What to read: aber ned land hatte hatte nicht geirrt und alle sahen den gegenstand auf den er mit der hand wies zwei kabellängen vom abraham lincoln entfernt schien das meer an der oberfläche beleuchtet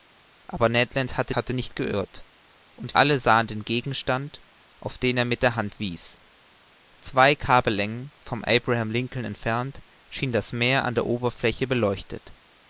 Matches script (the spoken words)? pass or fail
pass